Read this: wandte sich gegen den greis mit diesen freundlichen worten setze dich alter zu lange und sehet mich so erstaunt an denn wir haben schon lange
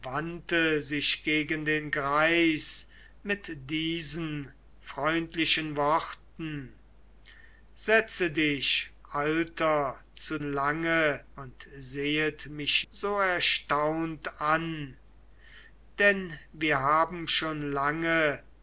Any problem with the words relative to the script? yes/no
no